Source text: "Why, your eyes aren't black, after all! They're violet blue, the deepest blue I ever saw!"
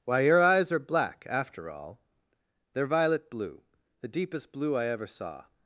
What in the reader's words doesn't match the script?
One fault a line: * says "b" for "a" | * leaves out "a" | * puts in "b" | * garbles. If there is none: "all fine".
* says "are" for "aren't"